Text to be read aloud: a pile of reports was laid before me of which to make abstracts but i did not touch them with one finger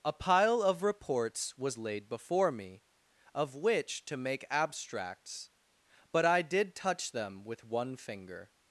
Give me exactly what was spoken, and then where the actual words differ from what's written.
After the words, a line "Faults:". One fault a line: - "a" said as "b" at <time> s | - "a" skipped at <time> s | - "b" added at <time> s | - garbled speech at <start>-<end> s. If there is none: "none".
a pile of reports was laid before me of which to make abstracts but i did touch them with one finger
Faults:
- "not" skipped at 6.8 s